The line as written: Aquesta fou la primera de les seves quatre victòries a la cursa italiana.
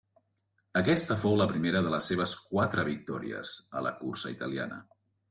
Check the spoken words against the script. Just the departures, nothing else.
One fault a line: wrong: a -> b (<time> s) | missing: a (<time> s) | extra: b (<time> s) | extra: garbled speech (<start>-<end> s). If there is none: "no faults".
no faults